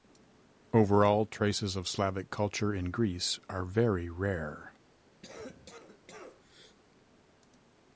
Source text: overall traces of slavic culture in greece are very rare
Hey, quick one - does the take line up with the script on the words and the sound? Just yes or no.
no